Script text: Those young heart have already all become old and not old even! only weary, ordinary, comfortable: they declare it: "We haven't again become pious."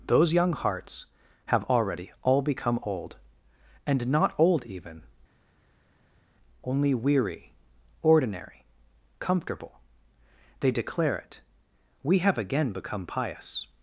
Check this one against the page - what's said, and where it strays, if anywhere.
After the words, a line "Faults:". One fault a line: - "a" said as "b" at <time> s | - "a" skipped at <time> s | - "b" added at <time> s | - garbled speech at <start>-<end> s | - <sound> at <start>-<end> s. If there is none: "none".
Those young hearts have already all become old and not old even! only weary, ordinary, comfortable: they declare it: "We have again become pious."
Faults:
- "heart" said as "hearts" at 0.5 s
- "haven't" said as "have" at 12.2 s